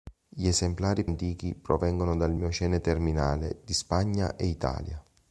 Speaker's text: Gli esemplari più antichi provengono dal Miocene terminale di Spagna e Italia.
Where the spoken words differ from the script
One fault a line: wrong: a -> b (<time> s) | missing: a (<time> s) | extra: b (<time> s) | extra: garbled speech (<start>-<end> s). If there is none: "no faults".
missing: più (1.1 s)